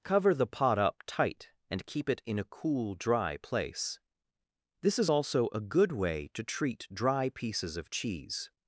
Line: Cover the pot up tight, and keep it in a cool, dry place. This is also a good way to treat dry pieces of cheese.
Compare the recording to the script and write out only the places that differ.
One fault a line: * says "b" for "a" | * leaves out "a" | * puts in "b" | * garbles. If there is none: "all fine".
all fine